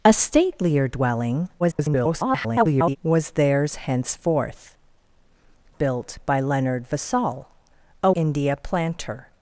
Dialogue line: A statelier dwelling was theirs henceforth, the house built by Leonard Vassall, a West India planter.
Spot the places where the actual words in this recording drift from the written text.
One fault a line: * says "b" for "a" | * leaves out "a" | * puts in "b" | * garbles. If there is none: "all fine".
* garbles
* leaves out "the house"
* leaves out "West"